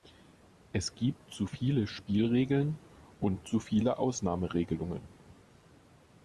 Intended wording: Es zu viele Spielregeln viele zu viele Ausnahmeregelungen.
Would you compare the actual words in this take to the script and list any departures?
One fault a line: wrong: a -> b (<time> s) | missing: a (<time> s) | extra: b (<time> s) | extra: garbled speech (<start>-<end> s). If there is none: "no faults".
extra: gibt (0.9 s)
wrong: viele -> und (3.2 s)